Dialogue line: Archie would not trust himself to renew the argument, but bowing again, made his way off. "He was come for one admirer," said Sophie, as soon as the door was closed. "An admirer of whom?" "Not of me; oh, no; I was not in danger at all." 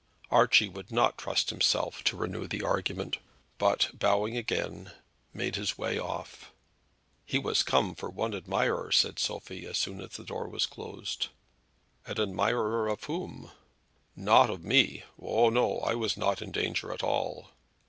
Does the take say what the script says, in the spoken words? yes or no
yes